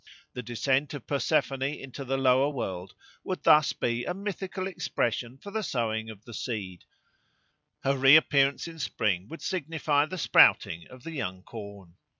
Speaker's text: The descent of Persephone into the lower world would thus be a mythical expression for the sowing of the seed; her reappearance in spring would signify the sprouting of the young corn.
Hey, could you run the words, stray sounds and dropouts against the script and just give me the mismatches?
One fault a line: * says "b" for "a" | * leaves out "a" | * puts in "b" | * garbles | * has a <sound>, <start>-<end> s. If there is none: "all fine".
all fine